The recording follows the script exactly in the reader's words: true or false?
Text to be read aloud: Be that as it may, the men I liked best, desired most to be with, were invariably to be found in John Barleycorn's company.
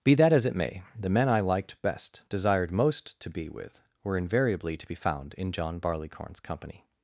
true